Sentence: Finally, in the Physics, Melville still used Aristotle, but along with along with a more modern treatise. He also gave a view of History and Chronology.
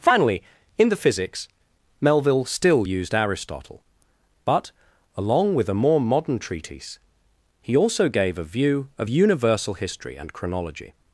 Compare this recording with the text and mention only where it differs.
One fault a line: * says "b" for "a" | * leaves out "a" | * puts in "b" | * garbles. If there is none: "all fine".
* leaves out "along with"
* puts in "Universal"